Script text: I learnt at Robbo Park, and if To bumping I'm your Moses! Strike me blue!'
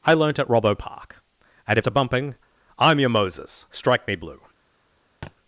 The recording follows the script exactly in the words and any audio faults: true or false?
false